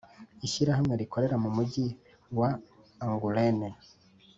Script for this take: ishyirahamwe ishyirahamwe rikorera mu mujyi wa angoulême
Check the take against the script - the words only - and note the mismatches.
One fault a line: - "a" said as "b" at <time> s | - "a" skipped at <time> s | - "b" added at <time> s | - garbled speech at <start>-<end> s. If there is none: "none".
- "ishyirahamwe" skipped at 0.9 s